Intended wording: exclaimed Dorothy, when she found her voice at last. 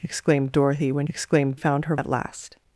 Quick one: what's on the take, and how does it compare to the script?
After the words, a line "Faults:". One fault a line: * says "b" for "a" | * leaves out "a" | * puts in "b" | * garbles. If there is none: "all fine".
exclaimed Dorothy, when exclaimed found her at last.
Faults:
* says "exclaimed" for "she"
* leaves out "voice"